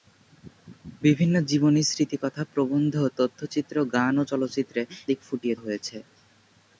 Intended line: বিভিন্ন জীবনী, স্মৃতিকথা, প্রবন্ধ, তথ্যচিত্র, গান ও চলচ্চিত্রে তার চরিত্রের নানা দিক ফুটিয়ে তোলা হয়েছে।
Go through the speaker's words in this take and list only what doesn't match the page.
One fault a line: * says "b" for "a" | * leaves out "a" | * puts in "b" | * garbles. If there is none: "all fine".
* leaves out "তার চরিত্রের নানা"
* leaves out "তোলা"